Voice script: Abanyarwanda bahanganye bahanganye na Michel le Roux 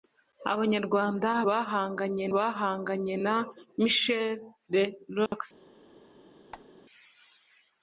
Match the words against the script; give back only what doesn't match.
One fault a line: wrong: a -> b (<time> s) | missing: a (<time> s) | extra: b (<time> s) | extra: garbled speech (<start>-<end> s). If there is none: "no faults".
no faults